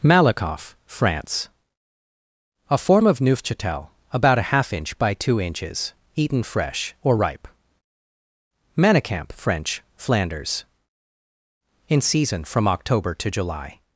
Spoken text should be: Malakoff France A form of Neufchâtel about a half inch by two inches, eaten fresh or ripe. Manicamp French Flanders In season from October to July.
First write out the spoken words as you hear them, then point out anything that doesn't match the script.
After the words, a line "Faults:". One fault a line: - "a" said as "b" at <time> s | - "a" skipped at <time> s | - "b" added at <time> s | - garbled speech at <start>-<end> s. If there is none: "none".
Malakoff France A form of Neufchâtel about a half inch by two inches, eaten fresh or ripe. Manicamp French Flanders In season from October to July.
Faults:
none